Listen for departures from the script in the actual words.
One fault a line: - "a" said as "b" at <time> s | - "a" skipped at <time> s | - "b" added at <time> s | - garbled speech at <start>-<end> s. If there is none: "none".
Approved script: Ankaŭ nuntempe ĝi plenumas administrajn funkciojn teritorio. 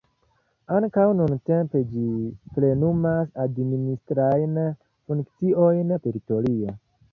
none